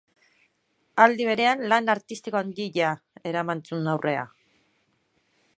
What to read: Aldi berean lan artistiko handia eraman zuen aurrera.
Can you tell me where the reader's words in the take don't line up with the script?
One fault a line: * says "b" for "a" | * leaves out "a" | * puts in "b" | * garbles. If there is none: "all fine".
all fine